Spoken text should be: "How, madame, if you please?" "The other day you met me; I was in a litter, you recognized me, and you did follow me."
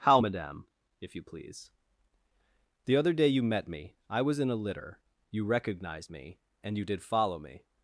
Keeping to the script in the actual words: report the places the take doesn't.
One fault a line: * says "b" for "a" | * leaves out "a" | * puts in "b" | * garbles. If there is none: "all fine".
all fine